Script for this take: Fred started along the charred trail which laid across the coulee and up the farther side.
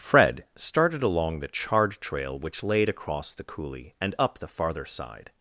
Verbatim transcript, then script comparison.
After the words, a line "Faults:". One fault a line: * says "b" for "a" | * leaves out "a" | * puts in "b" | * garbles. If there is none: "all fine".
Fred started along the charred trail which laid across the coulee and up the farther side.
Faults:
all fine